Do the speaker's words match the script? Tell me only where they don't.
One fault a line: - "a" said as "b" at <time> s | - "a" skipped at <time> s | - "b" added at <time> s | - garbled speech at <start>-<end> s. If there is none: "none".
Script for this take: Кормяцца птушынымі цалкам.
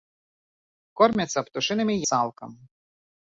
none